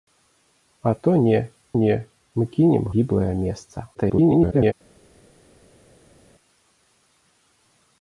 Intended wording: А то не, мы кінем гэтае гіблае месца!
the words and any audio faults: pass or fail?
fail